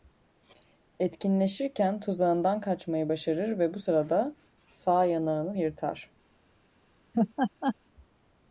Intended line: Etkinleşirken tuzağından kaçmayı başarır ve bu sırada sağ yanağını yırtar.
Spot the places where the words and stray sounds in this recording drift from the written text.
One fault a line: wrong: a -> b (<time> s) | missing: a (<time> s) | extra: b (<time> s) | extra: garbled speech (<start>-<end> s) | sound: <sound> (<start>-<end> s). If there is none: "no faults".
sound: laugh (7.1-7.8 s)